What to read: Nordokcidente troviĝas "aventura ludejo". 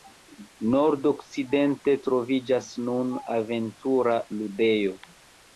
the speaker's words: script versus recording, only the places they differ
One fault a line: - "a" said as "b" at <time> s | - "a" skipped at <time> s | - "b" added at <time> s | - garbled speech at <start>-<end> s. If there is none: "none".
- "nun" added at 2.9 s